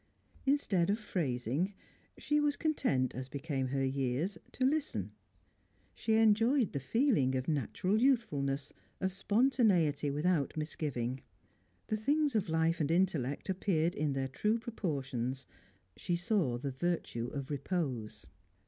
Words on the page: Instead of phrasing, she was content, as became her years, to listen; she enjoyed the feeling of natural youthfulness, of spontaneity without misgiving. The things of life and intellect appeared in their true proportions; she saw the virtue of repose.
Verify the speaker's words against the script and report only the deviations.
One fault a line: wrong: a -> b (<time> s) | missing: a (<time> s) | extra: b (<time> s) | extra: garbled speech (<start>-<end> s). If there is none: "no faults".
no faults